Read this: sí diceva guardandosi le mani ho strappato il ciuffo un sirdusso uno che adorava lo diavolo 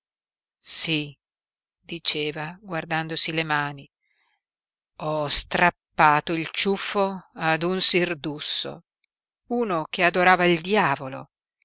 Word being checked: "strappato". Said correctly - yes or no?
yes